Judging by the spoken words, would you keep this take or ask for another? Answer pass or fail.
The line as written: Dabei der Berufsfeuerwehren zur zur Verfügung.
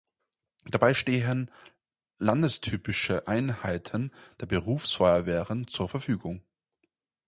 fail